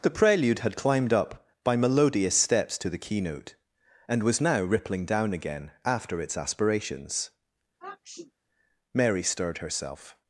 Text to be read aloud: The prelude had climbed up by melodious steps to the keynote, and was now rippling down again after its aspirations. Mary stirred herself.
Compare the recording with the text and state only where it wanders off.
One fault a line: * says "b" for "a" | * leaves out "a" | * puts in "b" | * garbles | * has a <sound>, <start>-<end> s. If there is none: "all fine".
* has a sniff, 7.8-8.3 s